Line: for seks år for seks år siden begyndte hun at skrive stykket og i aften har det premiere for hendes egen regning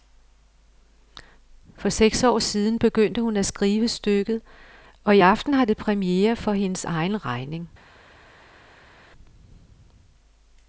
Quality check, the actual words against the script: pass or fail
fail